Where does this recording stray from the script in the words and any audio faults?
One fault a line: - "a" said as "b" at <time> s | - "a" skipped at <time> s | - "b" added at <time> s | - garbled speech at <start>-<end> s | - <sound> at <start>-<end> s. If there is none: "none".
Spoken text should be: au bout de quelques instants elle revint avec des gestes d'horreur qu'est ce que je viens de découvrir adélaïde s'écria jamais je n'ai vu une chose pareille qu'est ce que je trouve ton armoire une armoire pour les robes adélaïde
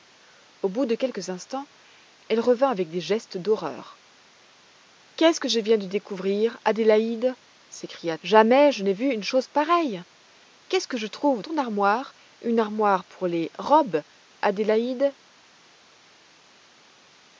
none